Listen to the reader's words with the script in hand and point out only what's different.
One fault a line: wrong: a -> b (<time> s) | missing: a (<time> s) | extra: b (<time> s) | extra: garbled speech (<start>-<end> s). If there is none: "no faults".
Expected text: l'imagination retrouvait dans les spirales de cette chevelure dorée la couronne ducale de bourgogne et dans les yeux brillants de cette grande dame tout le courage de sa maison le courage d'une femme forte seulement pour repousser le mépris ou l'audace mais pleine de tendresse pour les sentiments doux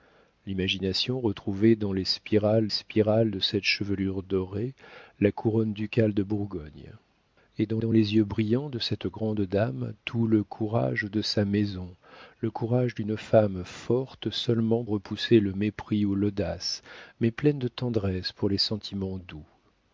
extra: spirales (2.7 s)
extra: dans (7.8 s)
missing: pour (14.8 s)